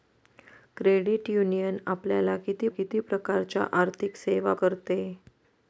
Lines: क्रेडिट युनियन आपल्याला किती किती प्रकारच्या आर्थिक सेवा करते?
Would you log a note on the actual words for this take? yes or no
no